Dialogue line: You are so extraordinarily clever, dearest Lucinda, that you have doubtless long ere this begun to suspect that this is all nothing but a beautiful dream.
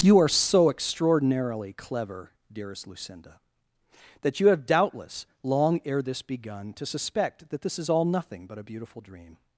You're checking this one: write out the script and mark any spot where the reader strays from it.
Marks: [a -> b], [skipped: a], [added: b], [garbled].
You are so extraordinarily clever, dearest Lucinda, that you have doubtless long ere this begun to suspect that this is all nothing but a beautiful dream.